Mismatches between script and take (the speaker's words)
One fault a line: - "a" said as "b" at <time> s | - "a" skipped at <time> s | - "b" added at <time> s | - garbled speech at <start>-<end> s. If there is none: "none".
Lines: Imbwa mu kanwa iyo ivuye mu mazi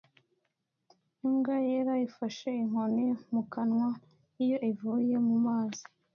- "yera ifashe inkoni" added at 1.7 s